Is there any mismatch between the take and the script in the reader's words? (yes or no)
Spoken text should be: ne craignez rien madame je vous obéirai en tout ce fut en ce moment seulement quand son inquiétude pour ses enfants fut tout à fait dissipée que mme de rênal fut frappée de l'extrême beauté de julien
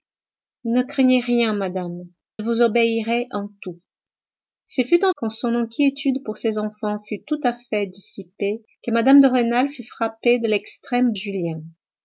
yes